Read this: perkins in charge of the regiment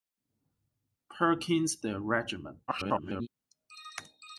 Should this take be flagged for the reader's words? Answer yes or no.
yes